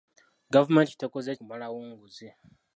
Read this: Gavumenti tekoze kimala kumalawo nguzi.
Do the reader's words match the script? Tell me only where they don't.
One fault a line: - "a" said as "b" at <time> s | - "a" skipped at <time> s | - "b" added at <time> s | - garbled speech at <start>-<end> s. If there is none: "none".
- "kimala" skipped at 1.3 s